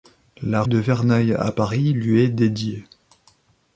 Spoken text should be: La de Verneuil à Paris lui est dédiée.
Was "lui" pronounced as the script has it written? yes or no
yes